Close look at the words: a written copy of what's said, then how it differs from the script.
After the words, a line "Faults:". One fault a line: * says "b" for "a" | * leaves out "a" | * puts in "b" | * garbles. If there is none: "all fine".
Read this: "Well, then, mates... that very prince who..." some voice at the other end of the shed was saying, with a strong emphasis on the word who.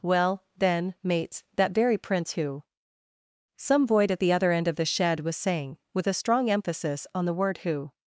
"Well, then, mates... that very prince who..." some void at the other end of the shed was saying, with a strong emphasis on the word who.
Faults:
* says "void" for "voice"